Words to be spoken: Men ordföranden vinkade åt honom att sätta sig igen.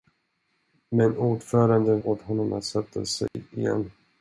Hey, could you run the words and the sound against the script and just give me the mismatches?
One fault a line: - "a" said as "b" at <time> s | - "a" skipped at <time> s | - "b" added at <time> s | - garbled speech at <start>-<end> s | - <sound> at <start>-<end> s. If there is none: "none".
- "vinkade" skipped at 2.0 s
- dropout at 3.3-3.3 s